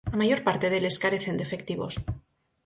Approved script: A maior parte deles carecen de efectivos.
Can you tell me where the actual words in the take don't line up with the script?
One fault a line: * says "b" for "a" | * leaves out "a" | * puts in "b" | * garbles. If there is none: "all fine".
all fine